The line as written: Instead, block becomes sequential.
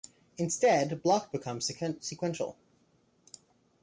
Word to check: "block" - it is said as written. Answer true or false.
true